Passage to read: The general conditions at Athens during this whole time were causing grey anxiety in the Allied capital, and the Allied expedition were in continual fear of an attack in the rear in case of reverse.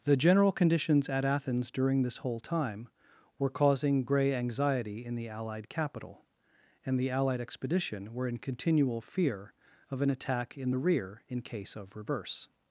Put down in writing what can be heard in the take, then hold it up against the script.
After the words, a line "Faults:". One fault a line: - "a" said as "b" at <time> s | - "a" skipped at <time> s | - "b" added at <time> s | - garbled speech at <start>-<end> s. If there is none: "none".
The general conditions at Athens during this whole time were causing grey anxiety in the Allied capital, and the Allied expedition were in continual fear of an attack in the rear in case of reverse.
Faults:
none